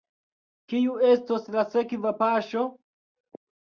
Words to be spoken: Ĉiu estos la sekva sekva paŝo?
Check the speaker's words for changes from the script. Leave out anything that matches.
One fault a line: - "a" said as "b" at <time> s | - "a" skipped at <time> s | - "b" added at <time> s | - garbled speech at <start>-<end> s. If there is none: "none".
- "Ĉiu" said as "Kiu" at 0.7 s
- "sekva" skipped at 2.2 s